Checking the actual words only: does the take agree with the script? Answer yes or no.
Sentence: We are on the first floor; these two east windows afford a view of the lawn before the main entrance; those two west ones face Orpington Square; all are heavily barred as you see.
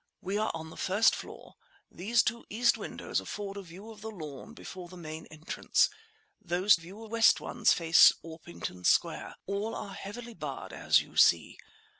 no